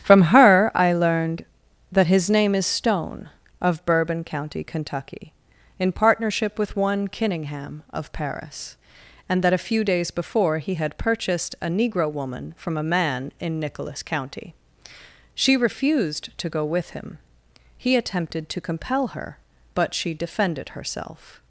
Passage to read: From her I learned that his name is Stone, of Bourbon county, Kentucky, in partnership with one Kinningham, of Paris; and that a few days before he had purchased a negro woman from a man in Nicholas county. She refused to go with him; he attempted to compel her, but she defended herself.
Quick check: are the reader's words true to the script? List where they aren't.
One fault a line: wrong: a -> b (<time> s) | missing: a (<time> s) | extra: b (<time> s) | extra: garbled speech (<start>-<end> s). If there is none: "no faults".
no faults